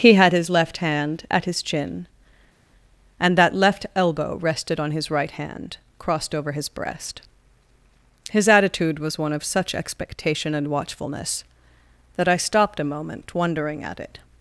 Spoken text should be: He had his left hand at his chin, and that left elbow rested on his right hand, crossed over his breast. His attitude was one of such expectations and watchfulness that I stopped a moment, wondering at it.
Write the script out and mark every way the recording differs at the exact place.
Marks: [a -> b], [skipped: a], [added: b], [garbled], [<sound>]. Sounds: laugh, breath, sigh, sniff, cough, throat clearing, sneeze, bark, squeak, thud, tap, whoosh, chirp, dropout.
He had his left hand at his chin, and that left elbow rested on his right hand, crossed over his breast. His attitude was one of such [expectations -> expectation] and watchfulness that I stopped a moment, wondering at it.